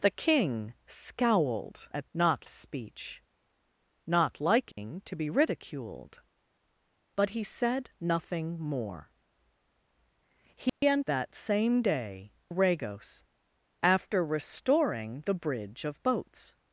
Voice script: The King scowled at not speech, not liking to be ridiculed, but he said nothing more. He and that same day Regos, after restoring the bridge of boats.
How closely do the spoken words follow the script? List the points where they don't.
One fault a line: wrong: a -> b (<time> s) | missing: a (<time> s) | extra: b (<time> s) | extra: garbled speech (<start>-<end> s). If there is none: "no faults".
no faults